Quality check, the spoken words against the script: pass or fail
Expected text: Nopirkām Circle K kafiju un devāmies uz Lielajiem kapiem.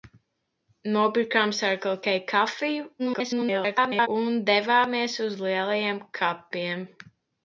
fail